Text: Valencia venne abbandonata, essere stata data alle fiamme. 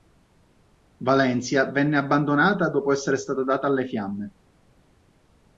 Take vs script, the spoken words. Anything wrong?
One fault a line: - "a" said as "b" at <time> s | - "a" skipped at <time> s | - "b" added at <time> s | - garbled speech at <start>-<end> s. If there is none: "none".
- "dopo" added at 2.7 s